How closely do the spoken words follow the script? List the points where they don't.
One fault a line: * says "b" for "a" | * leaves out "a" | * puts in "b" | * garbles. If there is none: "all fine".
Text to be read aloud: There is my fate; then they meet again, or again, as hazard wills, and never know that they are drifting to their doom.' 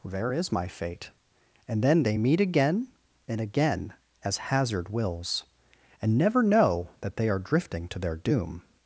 * puts in "and"
* says "and" for "or"